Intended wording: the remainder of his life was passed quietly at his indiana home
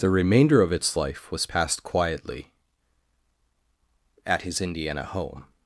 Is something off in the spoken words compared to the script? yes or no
yes